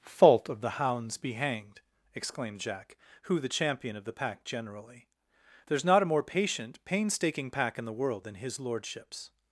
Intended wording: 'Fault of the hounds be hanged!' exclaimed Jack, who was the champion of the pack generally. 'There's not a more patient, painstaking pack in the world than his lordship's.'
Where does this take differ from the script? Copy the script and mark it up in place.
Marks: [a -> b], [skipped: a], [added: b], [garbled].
'Fault of the hounds be hanged!' exclaimed Jack, who [skipped: was] the champion of the pack generally. 'There's not a more patient, painstaking pack in the world than his lordship's.'